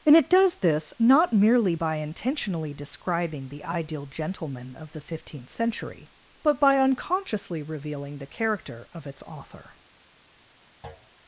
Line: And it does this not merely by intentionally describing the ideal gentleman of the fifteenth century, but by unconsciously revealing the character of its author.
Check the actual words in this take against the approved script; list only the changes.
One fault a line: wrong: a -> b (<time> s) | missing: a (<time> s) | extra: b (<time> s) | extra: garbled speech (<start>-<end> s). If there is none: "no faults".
no faults